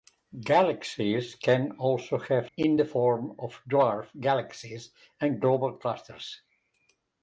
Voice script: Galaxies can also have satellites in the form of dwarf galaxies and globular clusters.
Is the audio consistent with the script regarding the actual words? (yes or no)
no